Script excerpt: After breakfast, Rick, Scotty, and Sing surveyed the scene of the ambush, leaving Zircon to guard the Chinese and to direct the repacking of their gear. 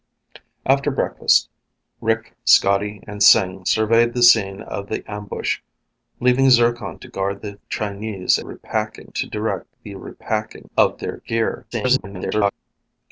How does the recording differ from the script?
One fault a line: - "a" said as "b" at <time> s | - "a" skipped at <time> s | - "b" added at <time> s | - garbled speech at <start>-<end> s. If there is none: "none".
- "and" said as "repacking" at 8.4 s
- garbled speech at 11.7-12.5 s